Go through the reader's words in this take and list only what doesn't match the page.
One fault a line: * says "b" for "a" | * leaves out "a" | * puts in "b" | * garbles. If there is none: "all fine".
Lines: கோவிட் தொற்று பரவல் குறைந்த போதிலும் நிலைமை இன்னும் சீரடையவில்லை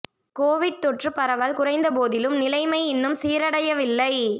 all fine